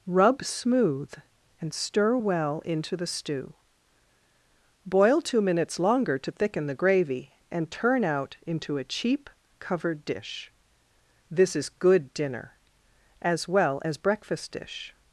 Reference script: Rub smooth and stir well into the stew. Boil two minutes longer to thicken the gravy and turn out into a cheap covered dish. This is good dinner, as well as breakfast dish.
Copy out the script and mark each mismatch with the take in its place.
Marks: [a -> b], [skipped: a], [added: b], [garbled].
Rub smooth and stir well into the stew. Boil two minutes longer to thicken the gravy and turn out into a cheap covered dish. This is good dinner, as well as breakfast dish.